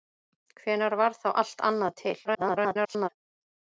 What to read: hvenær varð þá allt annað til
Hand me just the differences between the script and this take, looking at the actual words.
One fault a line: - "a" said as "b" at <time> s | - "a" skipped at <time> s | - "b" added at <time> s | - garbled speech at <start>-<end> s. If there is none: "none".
- garbled speech at 2.2-3.1 s